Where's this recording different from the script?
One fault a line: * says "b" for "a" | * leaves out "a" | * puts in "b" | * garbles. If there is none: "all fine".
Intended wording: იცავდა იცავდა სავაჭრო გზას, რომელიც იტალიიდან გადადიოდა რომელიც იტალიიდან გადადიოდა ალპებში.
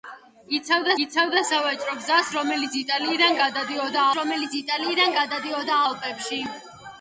all fine